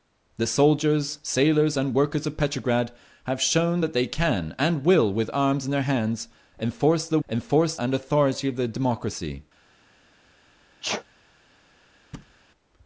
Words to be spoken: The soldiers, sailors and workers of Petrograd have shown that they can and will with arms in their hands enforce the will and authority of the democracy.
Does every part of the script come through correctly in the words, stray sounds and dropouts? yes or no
no